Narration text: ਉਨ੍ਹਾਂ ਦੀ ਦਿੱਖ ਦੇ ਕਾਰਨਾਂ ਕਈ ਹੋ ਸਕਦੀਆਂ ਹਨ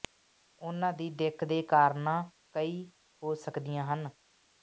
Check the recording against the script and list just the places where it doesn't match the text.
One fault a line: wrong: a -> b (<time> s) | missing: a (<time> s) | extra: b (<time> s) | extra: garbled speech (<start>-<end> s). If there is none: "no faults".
no faults